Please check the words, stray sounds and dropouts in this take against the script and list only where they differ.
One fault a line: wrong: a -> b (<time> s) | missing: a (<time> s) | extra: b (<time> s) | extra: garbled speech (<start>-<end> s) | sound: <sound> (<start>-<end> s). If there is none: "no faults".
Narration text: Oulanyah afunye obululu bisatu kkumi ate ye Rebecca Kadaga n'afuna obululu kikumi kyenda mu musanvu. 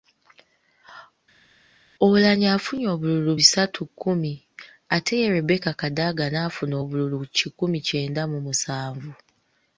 no faults